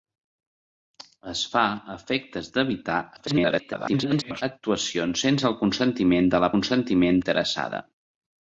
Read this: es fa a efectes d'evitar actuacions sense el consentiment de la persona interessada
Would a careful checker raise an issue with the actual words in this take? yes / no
yes